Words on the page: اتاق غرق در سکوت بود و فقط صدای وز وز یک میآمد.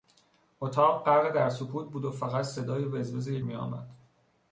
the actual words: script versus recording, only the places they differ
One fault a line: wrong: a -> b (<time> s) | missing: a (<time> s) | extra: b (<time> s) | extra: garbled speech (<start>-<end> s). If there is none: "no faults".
no faults